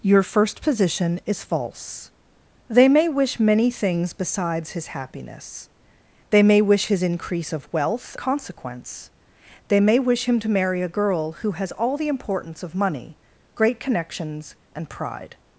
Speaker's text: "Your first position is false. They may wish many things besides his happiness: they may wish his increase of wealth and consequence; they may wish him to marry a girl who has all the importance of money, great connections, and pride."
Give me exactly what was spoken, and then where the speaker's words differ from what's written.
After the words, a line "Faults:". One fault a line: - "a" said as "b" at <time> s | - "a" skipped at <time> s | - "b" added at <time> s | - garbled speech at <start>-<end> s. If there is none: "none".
"Your first position is false. They may wish many things besides his happiness: they may wish his increase of wealth consequence; they may wish him to marry a girl who has all the importance of money, great connections, and pride."
Faults:
- "and" skipped at 8.1 s